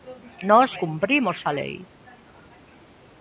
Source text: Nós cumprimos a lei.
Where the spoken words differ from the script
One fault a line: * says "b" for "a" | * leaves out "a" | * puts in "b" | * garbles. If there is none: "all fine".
all fine